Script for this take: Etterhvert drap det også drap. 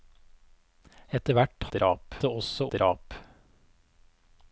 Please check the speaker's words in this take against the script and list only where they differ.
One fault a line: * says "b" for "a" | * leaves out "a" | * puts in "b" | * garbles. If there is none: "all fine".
all fine